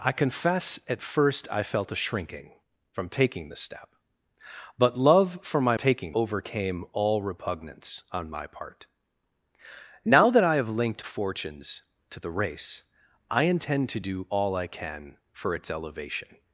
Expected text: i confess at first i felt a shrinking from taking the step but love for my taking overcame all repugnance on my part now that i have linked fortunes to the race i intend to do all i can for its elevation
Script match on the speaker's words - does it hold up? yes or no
yes